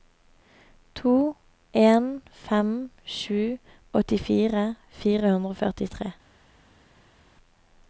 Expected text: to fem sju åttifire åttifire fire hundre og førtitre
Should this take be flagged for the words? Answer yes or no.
yes